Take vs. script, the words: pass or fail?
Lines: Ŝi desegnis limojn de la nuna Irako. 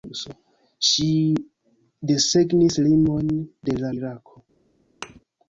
fail